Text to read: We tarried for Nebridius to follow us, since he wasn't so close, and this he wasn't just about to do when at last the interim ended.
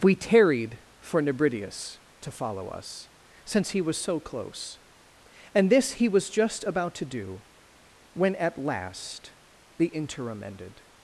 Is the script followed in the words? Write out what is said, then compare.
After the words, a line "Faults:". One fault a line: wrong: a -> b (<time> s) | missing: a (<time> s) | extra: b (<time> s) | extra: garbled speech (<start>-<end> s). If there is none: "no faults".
We tarried for Nebridius to follow us, since he was so close, and this he was just about to do when at last the interim ended.
Faults:
wrong: wasn't -> was (3.8 s)
wrong: wasn't -> was (6.1 s)